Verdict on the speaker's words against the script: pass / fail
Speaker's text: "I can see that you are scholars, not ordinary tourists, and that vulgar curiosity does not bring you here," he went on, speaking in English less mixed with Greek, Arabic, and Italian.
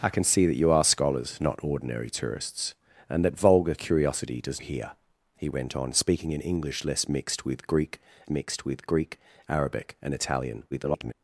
fail